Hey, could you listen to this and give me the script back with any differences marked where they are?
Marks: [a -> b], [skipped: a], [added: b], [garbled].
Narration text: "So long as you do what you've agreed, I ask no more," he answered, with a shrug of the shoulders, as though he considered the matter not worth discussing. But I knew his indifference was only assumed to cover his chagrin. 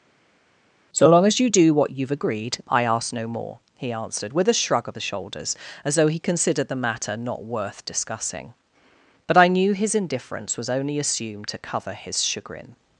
"So long as you do what you've agreed, I ask no more," he answered, with a shrug of the shoulders, as though he considered the matter not worth discussing. But I knew his indifference was only assumed to cover his chagrin.